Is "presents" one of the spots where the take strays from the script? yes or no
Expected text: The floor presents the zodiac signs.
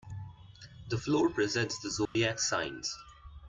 no